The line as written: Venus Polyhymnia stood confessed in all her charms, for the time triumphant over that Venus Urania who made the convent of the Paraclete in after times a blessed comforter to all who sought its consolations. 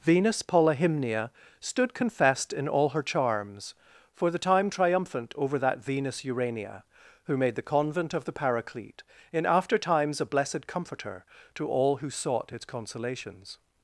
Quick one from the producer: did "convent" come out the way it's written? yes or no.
yes